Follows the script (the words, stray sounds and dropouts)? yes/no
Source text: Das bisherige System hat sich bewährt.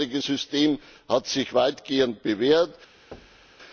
no